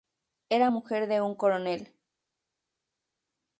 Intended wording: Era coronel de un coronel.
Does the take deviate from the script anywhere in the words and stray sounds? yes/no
yes